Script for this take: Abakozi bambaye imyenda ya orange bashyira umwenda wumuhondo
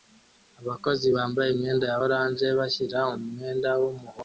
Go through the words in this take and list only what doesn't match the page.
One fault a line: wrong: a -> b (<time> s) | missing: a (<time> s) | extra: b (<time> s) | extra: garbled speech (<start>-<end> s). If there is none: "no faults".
no faults